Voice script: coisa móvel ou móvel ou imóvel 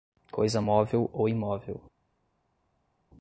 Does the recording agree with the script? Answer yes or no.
no